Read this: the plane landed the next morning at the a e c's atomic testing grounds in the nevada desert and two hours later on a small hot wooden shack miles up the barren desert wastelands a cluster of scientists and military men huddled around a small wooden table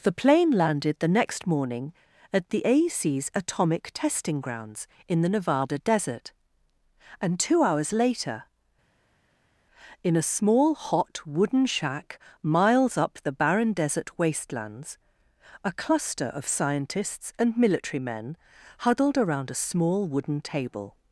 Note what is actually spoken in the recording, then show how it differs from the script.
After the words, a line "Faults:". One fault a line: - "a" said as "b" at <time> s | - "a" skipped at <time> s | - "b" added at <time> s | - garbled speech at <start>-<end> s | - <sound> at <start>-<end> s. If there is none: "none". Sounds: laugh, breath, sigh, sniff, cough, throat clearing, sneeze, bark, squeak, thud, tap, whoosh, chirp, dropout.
the plane landed the next morning at the a e c's atomic testing grounds in the nevada desert and two hours later in a small hot wooden shack miles up the barren desert wastelands a cluster of scientists and military men huddled around a small wooden table
Faults:
- "on" said as "in" at 10.0 s